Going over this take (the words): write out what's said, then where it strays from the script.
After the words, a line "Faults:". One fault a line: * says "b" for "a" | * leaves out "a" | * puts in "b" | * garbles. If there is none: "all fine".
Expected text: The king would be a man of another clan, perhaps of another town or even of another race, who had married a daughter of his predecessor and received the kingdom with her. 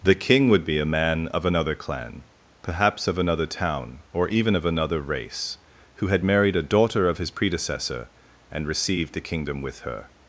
The king would be a man of another clan, perhaps of another town or even of another race, who had married a daughter of his predecessor and received the kingdom with her.
Faults:
all fine